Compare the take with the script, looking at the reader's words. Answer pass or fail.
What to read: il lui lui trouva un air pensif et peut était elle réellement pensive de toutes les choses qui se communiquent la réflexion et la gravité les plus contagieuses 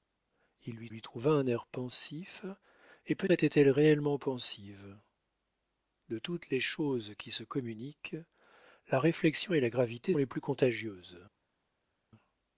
pass